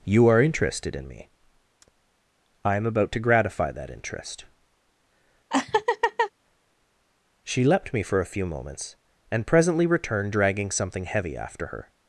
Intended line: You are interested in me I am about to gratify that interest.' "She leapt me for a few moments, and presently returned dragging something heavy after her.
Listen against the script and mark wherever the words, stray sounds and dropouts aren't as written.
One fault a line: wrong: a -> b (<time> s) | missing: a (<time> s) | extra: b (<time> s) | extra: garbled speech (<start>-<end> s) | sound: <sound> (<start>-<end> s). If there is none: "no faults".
sound: laugh (5.5-6.3 s)